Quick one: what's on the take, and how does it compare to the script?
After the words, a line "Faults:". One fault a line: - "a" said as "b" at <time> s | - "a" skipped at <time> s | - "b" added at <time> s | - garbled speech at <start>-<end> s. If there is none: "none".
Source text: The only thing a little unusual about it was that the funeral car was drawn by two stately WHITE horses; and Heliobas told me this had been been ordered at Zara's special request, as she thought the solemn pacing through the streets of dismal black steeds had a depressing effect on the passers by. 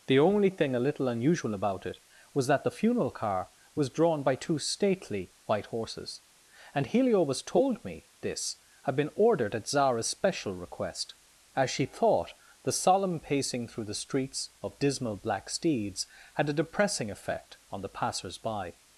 The only thing a little unusual about it was that the funeral car was drawn by two stately WHITE horses; and Heliobas told me this had been ordered at Zara's special request, as she thought the solemn pacing through the streets of dismal black steeds had a depressing effect on the passers by.
Faults:
- "been" skipped at 9.1 s